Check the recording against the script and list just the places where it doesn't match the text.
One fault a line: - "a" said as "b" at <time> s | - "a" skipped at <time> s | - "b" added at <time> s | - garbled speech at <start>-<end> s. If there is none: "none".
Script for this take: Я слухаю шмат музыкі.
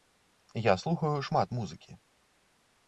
none